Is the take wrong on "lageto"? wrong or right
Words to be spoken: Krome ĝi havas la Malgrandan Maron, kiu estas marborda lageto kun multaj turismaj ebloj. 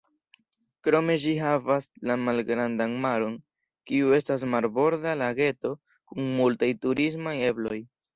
right